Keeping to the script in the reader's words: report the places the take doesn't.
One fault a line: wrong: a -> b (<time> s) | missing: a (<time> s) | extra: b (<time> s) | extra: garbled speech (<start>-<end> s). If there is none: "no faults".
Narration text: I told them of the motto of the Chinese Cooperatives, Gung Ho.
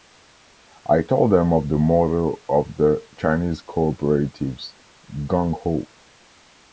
no faults